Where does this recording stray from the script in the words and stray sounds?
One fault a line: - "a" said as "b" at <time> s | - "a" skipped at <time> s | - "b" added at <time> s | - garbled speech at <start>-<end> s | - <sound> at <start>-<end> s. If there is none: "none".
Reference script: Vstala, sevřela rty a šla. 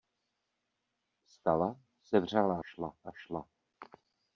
- "rty" said as "šla" at 2.6 s